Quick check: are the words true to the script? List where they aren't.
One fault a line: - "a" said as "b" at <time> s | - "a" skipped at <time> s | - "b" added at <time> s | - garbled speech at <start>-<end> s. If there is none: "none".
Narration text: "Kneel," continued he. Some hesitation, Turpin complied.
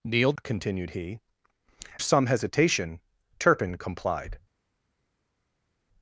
none